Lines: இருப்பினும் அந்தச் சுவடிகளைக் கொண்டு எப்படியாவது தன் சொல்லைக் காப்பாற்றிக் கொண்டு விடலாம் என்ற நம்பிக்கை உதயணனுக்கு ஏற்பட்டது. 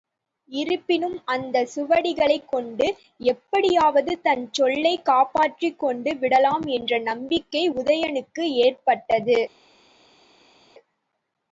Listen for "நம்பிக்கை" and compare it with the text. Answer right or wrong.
right